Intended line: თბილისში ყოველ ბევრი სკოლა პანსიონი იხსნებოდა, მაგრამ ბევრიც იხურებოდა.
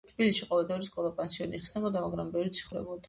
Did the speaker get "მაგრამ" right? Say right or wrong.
right